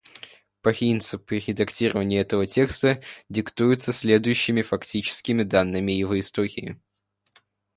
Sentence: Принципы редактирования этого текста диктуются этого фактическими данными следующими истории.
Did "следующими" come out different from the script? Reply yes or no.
yes